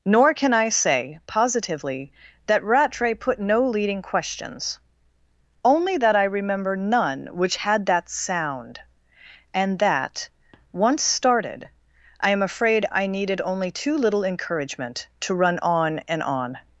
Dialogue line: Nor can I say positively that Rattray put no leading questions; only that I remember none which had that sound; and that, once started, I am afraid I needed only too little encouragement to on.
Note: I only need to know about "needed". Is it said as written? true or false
true